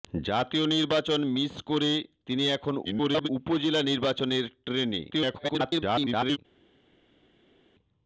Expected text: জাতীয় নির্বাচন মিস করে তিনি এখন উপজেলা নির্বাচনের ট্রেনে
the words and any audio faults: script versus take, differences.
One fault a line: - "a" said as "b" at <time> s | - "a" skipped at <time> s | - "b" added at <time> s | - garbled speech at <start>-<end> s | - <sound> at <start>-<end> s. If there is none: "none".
- garbled speech at 2.8-3.3 s
- garbled speech at 5.1-6.4 s